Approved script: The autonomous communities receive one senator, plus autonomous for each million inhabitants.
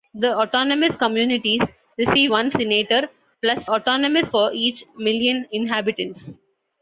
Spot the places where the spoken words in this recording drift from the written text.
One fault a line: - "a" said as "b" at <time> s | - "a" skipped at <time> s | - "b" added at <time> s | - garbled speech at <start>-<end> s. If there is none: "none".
none